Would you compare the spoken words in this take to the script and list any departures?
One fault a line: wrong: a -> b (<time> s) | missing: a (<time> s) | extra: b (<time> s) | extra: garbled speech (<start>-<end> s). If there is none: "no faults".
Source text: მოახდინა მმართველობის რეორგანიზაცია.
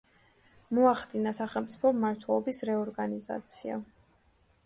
extra: სახელმწიფო (1.4 s)